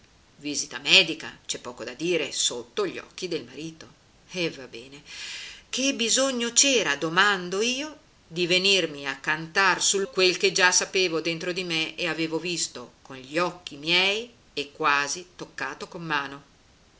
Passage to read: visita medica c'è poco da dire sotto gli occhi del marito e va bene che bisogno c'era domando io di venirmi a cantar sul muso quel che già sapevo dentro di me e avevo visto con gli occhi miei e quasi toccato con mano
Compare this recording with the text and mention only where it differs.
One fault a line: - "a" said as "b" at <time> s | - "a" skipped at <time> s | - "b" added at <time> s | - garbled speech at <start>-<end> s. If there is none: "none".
- "muso" skipped at 10.1 s